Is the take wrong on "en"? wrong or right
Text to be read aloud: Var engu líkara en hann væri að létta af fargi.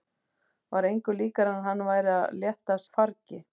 right